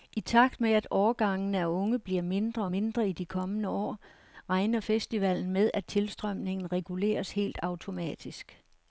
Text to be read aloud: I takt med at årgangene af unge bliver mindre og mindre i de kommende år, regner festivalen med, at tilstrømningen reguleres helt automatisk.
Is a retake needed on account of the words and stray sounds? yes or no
no